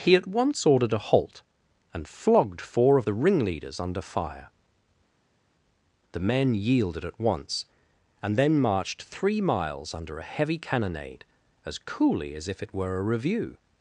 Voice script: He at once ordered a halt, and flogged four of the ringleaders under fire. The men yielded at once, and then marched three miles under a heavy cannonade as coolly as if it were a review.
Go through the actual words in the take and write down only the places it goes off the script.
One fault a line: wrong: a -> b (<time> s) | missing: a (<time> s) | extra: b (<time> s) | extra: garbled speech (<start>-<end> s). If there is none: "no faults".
no faults